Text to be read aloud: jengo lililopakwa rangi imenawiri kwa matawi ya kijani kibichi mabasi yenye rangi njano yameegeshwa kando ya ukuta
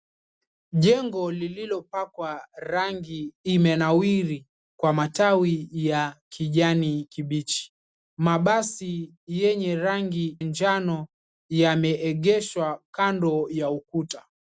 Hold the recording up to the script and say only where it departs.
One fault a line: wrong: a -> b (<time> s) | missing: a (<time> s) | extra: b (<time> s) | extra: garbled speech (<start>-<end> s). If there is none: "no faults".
no faults